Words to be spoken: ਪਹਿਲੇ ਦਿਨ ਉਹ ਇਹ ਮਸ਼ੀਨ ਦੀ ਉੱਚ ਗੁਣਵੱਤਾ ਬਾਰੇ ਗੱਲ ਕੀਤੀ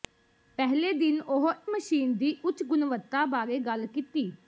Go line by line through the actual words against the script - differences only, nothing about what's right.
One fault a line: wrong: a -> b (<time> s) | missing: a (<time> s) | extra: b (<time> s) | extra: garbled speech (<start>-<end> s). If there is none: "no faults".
missing: ਇਹ (1.5 s)